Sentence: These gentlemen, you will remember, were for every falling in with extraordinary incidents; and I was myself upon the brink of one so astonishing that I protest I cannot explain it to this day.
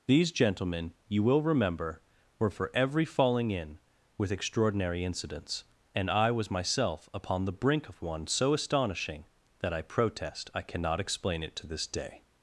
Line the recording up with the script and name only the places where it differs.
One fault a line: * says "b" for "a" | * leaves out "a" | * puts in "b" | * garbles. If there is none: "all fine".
all fine